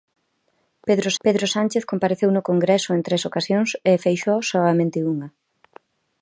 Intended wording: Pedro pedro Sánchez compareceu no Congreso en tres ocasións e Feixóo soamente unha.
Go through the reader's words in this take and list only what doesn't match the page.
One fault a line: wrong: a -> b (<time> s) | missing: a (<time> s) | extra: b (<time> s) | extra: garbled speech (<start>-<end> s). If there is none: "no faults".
no faults